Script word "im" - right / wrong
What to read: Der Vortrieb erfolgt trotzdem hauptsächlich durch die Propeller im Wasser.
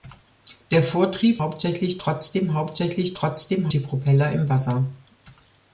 right